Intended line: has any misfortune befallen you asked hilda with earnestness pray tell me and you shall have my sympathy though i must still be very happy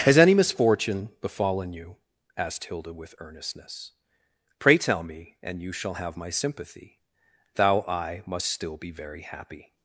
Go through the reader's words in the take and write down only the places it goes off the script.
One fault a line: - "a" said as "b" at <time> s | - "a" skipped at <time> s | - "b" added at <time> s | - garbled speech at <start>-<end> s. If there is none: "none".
- "though" said as "thou" at 7.5 s